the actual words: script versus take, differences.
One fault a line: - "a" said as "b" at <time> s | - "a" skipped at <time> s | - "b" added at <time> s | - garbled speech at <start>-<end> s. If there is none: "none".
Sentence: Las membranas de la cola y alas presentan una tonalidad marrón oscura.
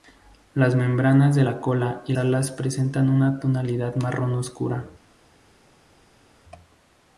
none